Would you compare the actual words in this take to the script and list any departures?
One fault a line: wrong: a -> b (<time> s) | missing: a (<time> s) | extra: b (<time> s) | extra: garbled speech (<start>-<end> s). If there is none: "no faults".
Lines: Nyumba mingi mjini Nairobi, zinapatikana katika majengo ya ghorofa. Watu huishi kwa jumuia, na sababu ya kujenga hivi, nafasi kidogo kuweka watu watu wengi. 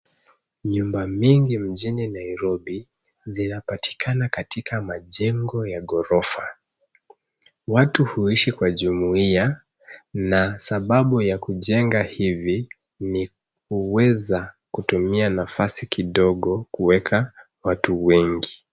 extra: ni kuweza kutumia (13.0 s)
missing: watu (18.1 s)